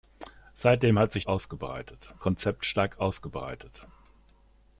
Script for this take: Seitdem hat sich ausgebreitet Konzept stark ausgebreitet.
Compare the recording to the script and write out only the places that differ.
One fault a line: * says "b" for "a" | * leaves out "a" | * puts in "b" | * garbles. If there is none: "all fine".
all fine